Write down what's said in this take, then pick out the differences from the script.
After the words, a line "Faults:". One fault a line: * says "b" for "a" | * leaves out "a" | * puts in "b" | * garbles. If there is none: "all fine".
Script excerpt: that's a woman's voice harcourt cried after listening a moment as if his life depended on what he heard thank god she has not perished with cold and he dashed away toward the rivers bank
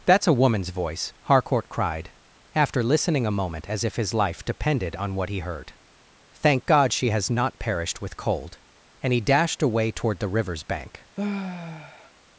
that's a woman's voice harcourt cried after listening a moment as if his life depended on what he heard thank god she has not perished with cold and he dashed away toward the rivers bank
Faults:
all fine